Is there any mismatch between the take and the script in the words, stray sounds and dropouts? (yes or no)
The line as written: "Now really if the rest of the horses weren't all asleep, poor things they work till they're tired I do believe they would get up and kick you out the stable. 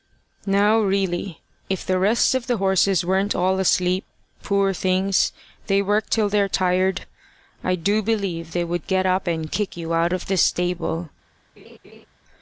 yes